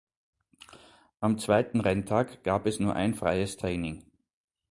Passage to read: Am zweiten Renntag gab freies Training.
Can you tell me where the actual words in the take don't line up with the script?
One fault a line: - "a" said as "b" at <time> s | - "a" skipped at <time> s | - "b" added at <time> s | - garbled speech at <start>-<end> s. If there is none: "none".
- "es nur ein" added at 2.6 s